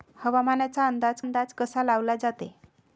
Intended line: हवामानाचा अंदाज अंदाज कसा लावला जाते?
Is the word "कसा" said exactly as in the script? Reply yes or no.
yes